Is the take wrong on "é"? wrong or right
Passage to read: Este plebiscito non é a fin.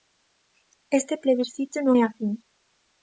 right